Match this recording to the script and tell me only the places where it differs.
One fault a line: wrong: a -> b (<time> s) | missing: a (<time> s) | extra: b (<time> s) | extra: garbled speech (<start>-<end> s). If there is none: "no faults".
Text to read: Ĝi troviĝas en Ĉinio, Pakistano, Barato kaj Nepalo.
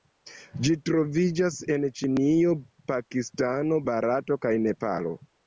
no faults